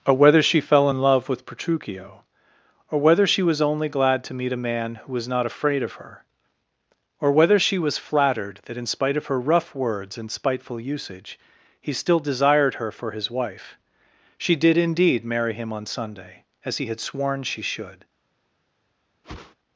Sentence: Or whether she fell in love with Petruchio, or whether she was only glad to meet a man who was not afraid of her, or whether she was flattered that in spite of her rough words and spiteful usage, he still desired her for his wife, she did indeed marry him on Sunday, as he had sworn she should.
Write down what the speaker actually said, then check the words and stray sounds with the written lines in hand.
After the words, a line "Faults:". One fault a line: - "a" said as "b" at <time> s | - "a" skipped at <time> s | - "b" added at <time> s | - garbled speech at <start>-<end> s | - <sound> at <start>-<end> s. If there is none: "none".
Or whether she fell in love with Petruchio, or whether she was only glad to meet a man who was not afraid of her, or whether she was flattered that in spite of her rough words and spiteful usage, he still desired her for his wife, she did indeed marry him on Sunday, as he had sworn she should.
Faults:
- whoosh at 19.2-19.5 s